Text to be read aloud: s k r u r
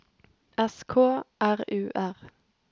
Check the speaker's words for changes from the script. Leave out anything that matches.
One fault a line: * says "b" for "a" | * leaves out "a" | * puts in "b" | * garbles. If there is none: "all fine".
all fine